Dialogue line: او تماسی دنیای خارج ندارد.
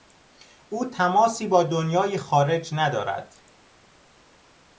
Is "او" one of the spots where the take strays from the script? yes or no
no